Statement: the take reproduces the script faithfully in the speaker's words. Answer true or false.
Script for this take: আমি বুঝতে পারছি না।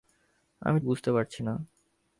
true